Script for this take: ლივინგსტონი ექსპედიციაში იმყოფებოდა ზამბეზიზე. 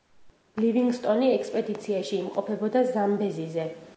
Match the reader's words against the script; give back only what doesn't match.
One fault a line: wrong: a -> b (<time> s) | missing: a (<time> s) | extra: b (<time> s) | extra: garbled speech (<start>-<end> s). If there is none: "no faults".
no faults